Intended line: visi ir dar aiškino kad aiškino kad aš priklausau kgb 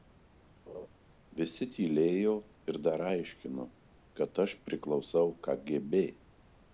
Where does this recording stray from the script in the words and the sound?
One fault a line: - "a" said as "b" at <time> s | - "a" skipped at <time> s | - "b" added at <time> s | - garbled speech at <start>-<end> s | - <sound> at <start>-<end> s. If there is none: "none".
- laugh at 0.7-0.9 s
- "tylėjo" added at 1.7 s
- "aiškino kad" skipped at 4.4 s